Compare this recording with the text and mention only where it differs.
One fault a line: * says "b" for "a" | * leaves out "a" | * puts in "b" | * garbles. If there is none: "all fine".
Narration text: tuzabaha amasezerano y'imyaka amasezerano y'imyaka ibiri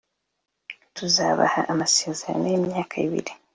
* leaves out "amasezerano y'imyaka"